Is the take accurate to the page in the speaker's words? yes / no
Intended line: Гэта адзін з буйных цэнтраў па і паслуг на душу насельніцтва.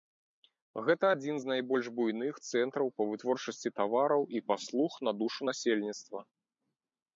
no